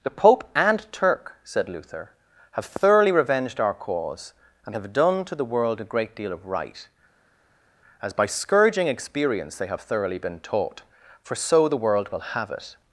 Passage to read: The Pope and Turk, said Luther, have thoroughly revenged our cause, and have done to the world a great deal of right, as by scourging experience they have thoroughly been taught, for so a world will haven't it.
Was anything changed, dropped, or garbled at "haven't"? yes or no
yes